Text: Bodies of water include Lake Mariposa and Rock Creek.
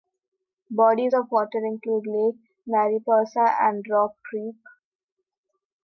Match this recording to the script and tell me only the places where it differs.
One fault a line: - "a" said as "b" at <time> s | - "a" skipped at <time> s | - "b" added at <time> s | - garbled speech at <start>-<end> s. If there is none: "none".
none